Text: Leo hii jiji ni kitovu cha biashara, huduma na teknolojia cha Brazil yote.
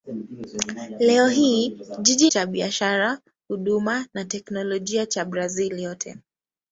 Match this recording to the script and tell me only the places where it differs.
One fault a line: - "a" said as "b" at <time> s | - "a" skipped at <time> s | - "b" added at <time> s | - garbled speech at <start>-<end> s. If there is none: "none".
- "ni kitovu" skipped at 2.3 s